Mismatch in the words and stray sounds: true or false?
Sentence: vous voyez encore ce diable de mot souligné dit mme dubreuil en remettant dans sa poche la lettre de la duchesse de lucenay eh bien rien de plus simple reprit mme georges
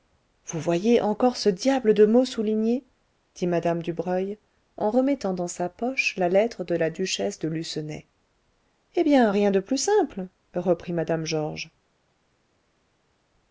false